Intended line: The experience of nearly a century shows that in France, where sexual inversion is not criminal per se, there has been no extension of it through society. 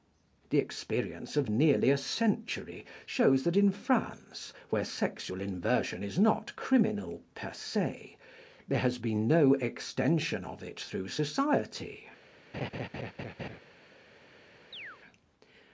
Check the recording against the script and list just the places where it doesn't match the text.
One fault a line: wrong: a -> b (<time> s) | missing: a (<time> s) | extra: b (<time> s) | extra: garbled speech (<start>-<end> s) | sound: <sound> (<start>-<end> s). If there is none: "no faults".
sound: laugh (12.5-13.6 s)
sound: chirp (14.7-15.0 s)